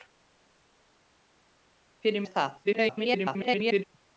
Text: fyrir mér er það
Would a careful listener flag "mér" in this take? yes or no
yes